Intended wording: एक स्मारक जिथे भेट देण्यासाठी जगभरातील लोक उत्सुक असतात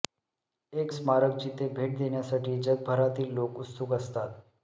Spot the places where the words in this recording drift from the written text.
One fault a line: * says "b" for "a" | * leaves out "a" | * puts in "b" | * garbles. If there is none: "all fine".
all fine